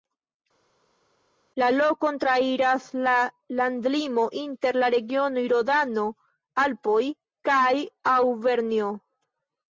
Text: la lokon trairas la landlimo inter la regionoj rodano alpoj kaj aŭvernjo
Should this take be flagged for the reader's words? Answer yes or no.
no